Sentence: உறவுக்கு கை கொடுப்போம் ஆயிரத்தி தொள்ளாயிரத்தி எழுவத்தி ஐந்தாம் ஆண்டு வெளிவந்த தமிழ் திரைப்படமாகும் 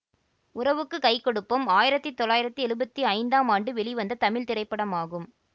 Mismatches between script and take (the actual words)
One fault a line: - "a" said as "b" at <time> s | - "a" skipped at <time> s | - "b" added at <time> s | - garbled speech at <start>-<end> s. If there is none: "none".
none